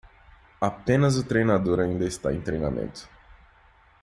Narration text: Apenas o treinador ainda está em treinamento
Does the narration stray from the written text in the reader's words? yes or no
no